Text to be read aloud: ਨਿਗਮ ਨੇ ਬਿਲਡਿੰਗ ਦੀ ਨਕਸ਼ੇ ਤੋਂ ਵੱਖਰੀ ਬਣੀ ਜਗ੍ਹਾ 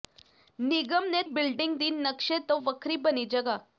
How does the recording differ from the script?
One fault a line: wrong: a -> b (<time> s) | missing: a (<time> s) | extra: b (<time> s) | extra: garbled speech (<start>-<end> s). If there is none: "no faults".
no faults